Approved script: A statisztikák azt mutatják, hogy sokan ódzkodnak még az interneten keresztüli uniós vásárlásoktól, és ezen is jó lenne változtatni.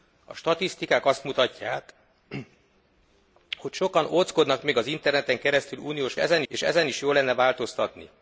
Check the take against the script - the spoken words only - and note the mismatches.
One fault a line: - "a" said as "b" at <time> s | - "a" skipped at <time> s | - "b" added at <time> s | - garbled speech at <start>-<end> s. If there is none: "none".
- "vásárlásoktól" said as "ezen" at 6.2 s